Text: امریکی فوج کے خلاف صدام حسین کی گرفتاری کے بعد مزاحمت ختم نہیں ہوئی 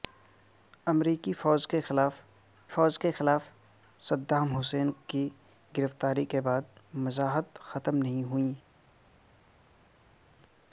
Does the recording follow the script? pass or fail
fail